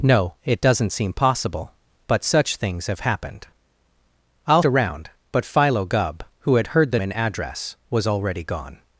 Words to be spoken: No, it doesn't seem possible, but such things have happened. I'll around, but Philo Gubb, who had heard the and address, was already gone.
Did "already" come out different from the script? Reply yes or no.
no